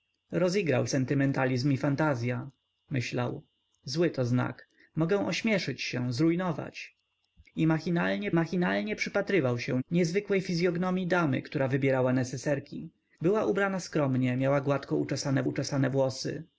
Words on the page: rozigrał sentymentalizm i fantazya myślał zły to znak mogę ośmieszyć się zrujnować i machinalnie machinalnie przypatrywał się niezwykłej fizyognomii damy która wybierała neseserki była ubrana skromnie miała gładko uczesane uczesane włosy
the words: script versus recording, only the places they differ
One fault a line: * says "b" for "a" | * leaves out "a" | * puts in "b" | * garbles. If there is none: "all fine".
all fine